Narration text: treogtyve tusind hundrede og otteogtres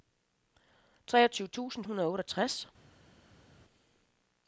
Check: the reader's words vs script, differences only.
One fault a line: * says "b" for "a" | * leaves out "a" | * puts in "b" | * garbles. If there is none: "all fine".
all fine